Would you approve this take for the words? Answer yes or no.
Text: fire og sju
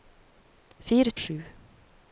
yes